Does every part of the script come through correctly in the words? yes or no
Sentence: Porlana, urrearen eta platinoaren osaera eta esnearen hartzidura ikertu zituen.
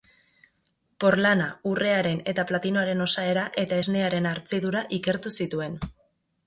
yes